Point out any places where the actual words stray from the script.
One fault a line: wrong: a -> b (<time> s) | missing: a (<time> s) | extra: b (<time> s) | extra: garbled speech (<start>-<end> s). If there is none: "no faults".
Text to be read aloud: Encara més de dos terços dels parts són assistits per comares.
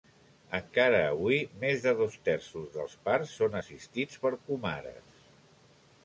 extra: avui (1.1 s)